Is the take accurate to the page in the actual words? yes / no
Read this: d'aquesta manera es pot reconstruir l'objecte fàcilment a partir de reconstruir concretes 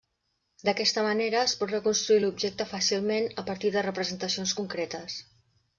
no